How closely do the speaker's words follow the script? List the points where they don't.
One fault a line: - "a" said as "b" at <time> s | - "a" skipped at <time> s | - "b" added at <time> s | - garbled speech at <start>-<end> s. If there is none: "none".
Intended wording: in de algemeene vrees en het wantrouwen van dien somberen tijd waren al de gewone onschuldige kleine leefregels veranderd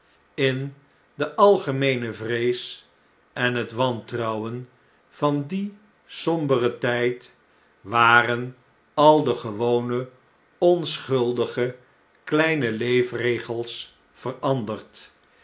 none